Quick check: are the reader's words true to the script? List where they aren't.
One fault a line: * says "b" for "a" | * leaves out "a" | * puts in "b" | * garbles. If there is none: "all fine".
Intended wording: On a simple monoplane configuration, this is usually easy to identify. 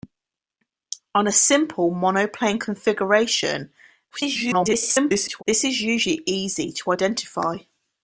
* garbles